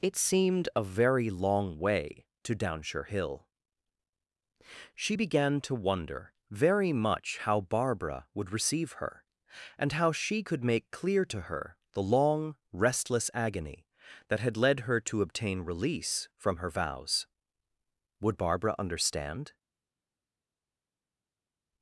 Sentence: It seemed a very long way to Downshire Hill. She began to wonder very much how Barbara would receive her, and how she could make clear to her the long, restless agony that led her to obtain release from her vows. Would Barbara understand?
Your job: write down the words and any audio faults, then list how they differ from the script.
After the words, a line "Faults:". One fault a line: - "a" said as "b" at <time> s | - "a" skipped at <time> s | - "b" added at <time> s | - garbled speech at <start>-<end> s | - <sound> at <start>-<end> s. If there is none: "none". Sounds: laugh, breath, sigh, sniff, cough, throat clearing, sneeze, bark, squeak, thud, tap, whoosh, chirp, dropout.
It seemed a very long way to Downshire Hill. She began to wonder very much how Barbara would receive her, and how she could make clear to her the long, restless agony that had led her to obtain release from her vows. Would Barbara understand?
Faults:
- "had" added at 14.4 s